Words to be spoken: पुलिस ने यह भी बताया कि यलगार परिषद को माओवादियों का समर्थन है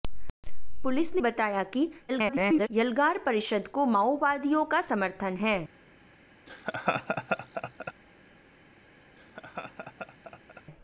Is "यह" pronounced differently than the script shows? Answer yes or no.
yes